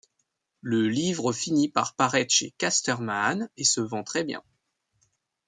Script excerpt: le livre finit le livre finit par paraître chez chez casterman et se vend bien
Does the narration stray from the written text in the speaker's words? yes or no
yes